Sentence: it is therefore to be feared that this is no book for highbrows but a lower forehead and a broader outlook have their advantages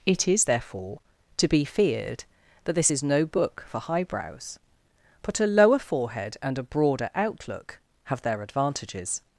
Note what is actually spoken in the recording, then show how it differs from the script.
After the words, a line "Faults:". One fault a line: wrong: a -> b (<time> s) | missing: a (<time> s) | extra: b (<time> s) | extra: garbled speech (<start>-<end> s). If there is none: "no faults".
it is therefore to be feared that this is no book for highbrows but a lower forehead and a broader outlook have their advantages
Faults:
no faults